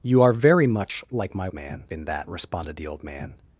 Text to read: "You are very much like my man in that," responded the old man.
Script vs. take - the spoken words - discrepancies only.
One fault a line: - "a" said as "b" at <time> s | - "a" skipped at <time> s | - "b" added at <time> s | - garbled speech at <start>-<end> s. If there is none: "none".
none